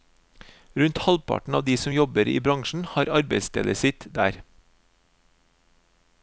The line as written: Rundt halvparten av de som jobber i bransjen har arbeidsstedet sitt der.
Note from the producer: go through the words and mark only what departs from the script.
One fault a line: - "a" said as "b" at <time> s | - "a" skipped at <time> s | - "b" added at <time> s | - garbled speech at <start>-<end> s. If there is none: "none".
none